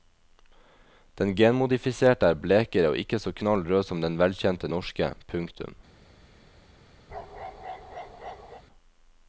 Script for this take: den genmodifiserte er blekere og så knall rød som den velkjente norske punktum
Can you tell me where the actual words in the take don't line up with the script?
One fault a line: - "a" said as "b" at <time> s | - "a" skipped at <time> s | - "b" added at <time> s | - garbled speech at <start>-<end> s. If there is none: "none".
- "ikke" added at 3.0 s